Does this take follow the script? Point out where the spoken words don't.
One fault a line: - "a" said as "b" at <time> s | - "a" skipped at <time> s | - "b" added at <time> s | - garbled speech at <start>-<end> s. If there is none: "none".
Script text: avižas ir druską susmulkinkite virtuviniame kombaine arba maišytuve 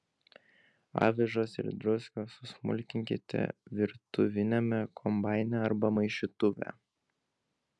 none